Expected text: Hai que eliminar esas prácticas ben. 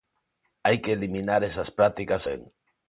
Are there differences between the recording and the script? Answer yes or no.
no